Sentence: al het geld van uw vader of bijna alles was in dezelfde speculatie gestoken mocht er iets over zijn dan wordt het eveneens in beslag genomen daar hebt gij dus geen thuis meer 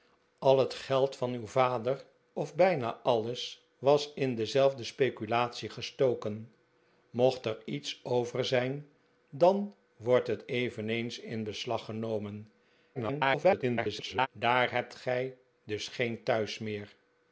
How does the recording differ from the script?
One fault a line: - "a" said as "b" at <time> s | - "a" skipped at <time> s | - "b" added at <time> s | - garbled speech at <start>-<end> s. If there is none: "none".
- garbled speech at 12.9-14.3 s